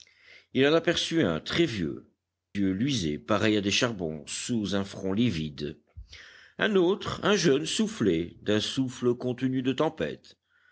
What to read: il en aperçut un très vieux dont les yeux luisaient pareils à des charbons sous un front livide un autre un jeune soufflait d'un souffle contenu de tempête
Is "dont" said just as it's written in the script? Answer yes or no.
no